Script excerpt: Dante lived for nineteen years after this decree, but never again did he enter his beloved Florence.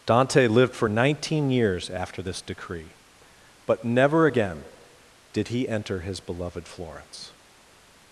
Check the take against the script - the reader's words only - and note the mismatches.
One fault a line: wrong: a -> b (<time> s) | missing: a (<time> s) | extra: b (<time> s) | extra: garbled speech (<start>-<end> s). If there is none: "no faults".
no faults